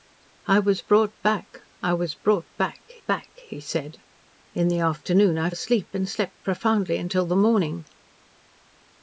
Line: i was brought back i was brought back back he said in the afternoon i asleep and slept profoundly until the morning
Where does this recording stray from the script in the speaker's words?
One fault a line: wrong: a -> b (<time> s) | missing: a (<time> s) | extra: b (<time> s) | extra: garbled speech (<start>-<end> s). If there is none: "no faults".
no faults